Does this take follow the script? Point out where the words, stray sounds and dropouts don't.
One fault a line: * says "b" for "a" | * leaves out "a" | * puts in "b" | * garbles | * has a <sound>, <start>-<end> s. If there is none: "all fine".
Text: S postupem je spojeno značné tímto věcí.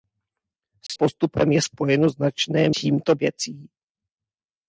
* has a dropout, 0.9-0.9 s